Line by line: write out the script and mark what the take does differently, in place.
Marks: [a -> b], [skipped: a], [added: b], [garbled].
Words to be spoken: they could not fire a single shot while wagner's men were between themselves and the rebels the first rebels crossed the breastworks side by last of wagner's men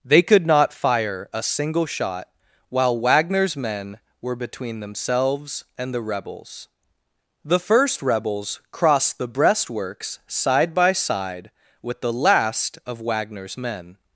they could not fire a single shot while wagner's men were between themselves and the rebels the first rebels crossed the breastworks side by [added: side with the] last of wagner's men